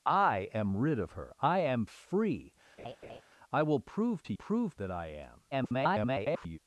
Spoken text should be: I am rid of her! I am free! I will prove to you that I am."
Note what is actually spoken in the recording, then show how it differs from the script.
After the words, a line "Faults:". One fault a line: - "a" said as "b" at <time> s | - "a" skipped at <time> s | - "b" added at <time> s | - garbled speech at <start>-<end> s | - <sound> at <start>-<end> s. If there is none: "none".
I am rid of her! I am free! I will prove to prove that I am." [garbled]
Faults:
- laugh at 2.8-3.2 s
- "you" said as "prove" at 4.3 s
- garbled speech at 5.5-6.6 s